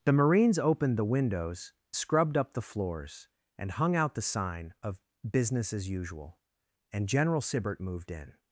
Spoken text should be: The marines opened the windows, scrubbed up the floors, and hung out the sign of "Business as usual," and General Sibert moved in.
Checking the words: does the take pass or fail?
pass